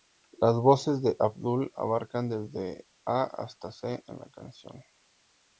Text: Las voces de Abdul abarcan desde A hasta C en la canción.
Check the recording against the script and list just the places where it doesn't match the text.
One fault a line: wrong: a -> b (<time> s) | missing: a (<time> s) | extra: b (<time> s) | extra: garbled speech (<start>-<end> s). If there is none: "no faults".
no faults